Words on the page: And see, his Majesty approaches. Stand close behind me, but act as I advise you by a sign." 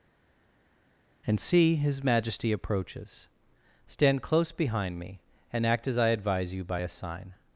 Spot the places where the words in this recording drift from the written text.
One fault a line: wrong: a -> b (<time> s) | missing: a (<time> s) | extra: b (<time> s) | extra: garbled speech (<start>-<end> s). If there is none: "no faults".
wrong: but -> and (5.5 s)